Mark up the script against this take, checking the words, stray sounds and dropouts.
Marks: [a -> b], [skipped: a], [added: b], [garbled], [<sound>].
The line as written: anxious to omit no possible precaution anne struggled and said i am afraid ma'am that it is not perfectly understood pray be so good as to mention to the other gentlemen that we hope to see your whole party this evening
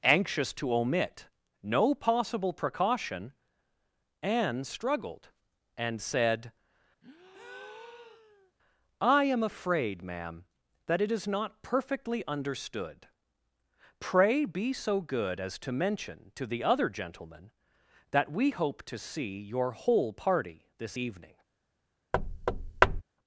anxious to omit no possible precaution anne struggled and said [breath] i am afraid ma'am that it is not perfectly understood pray be so good as to mention to the other gentlemen that we hope to see your whole party this evening [thud]